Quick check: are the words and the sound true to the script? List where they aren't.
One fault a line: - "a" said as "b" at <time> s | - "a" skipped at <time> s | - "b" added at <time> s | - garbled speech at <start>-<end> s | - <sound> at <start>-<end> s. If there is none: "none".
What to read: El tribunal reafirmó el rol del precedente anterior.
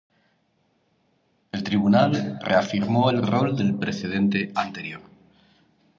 none